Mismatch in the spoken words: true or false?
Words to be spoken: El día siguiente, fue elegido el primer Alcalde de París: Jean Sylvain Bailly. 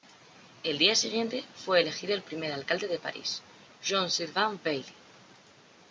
false